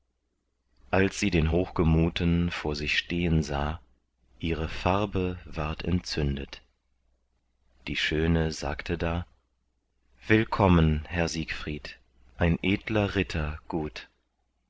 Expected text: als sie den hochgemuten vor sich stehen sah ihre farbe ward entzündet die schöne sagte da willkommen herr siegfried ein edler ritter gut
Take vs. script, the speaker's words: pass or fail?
pass